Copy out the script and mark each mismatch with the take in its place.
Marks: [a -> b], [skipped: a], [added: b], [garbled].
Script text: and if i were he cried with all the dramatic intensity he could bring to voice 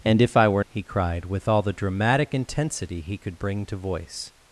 and if i were he cried with all the dramatic intensity he could bring to voice